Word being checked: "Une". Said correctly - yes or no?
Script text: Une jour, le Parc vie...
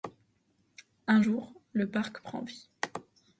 no